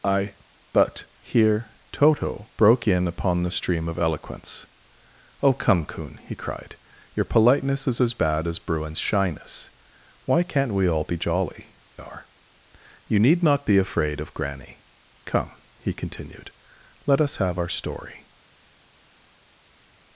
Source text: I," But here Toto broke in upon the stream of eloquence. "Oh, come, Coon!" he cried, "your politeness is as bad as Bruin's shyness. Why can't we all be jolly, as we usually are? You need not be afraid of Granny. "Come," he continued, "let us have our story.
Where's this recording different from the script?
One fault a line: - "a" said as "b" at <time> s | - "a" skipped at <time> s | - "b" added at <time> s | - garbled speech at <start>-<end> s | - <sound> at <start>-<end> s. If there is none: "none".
- "as we usually" skipped at 11.8 s